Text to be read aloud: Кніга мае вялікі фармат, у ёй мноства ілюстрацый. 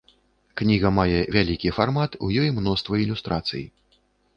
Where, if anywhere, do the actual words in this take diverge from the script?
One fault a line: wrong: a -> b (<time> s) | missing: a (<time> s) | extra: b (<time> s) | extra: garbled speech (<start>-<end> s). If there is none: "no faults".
no faults